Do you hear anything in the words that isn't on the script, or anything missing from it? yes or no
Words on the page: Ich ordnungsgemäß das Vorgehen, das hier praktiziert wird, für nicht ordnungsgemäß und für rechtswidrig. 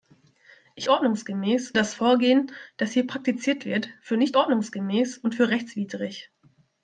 no